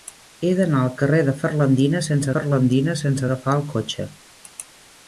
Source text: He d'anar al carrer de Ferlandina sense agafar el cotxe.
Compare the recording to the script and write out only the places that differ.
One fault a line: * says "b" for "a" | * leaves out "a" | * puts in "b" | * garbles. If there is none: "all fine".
* puts in "Ferlandina sense"